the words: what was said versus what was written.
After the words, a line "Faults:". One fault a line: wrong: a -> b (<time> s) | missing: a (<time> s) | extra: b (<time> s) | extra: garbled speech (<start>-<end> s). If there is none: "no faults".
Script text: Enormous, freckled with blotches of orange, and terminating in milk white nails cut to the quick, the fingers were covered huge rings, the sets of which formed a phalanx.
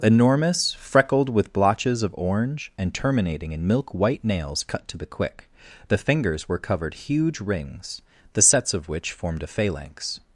Enormous, freckled with blotches of orange, and terminating in milk white nails cut to the quick, the fingers were covered huge rings, the sets of which formed a phalanx.
Faults:
no faults